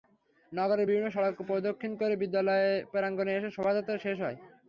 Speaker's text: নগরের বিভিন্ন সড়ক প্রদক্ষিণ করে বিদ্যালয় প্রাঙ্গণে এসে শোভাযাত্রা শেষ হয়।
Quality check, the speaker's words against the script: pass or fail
pass